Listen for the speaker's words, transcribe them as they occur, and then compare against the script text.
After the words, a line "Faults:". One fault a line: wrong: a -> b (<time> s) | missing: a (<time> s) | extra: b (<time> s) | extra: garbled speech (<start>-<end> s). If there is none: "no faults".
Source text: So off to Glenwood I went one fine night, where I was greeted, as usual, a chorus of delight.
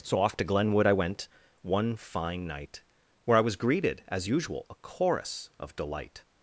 So off to Glenwood I went one fine night, where I was greeted, as usual, a chorus of delight.
Faults:
no faults